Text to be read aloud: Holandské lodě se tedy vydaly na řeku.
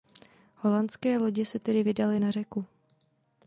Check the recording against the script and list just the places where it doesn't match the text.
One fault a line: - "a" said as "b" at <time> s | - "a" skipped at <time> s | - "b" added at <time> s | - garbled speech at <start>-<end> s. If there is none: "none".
none